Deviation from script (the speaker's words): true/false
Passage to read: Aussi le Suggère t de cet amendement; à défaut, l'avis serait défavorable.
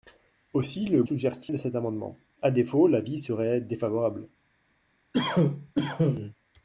false